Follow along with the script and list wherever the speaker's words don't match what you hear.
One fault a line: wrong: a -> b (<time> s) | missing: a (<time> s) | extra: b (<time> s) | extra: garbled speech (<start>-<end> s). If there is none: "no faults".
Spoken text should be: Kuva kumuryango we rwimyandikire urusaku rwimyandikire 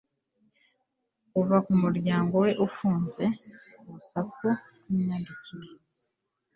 wrong: rwimyandikire -> ufunze (2.7 s)